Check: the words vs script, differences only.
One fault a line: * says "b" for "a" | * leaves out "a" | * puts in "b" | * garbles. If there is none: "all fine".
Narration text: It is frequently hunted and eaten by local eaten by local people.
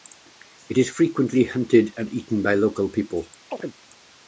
* leaves out "eaten by local"